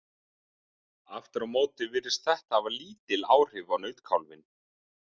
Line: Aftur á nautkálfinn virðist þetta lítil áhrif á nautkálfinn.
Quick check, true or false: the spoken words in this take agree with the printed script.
false